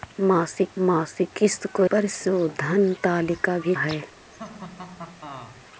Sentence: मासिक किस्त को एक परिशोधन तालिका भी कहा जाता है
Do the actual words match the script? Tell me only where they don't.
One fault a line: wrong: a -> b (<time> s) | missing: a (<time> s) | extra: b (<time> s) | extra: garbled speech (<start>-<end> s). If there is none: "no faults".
extra: मासिक (0.8 s)
missing: एक (1.8 s)
missing: कहा जाता (3.7 s)